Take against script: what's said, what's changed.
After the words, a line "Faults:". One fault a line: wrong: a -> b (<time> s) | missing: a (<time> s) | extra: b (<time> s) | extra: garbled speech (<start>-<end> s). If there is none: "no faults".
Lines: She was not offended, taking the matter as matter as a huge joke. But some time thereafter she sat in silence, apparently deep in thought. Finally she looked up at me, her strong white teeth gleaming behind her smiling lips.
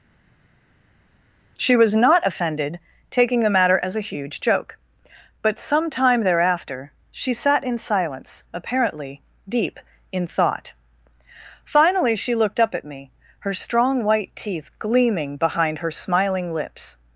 She was not offended, taking the matter as a huge joke. But some time thereafter she sat in silence, apparently deep in thought. Finally she looked up at me, her strong white teeth gleaming behind her smiling lips.
Faults:
missing: matter as (4.0 s)